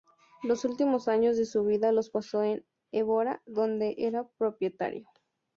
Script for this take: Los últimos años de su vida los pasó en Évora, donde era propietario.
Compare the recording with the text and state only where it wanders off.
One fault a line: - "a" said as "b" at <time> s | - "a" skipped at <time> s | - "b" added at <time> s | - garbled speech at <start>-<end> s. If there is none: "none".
none